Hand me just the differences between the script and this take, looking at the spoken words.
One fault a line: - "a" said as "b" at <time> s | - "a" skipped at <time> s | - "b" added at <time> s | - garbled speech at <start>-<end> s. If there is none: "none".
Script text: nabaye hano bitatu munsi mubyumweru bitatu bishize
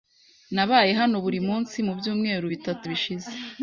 - "bitatu" said as "buri" at 1.2 s